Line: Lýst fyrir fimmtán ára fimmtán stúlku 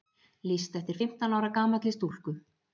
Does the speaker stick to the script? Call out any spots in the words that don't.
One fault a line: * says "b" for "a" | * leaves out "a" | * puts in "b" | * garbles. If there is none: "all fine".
* says "eftir" for "fyrir"
* says "gamalli" for "fimmtán"